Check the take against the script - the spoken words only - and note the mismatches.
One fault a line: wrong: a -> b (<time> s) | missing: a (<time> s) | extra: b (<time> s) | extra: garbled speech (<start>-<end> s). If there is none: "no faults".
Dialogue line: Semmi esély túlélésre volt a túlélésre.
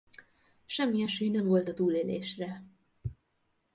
wrong: túlélésre -> nem (1.3 s)